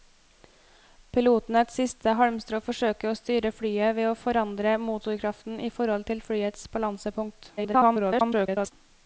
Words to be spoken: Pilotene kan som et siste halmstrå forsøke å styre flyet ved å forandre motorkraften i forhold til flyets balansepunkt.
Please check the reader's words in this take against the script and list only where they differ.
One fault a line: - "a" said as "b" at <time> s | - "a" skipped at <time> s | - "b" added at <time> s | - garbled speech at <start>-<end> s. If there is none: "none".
- "kan som" skipped at 1.6 s
- garbled speech at 7.6-8.7 s